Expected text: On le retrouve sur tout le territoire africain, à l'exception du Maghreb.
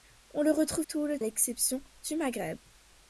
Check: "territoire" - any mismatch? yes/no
yes